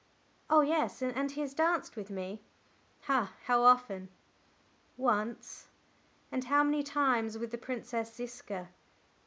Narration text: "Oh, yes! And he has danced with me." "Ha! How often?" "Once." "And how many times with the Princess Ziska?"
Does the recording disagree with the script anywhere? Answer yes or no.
no